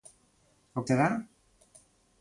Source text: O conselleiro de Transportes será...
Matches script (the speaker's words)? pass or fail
fail